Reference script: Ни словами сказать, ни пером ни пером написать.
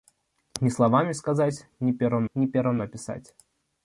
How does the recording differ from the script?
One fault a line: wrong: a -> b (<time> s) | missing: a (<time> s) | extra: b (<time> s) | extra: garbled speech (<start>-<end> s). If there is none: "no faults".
no faults